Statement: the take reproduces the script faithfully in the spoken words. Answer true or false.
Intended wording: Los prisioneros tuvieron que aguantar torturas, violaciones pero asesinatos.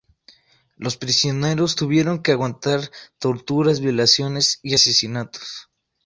false